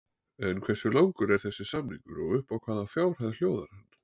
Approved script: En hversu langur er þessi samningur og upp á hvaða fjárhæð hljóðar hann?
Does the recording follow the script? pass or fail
pass